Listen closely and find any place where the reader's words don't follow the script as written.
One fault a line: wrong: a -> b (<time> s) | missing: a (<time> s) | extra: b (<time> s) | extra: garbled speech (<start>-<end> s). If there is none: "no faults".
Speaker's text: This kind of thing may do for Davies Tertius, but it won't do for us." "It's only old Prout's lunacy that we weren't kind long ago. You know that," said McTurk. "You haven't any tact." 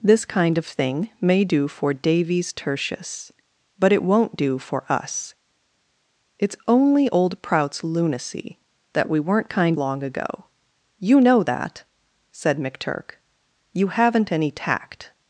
no faults